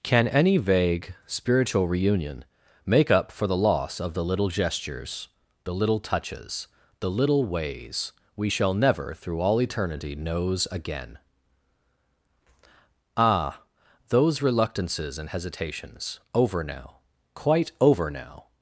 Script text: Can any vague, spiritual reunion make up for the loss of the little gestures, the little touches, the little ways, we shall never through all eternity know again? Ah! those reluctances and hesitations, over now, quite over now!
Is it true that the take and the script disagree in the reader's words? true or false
true